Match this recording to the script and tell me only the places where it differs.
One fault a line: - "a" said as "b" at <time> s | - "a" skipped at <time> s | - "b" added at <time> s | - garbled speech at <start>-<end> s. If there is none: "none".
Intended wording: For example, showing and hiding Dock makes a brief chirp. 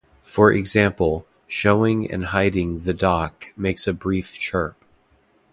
- "the" added at 2.8 s